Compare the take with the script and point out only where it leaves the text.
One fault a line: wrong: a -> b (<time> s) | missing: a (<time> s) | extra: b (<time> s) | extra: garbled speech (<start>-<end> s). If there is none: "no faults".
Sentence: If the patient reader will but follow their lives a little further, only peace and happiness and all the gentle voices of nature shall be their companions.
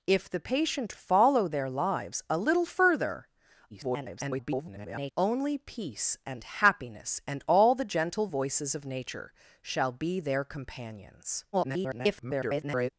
missing: reader will but (0.9 s)
extra: garbled speech (3.7-5.1 s)
extra: garbled speech (11.5-12.9 s)